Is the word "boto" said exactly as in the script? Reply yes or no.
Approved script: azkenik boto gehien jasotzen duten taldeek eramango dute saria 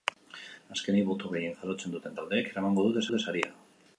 yes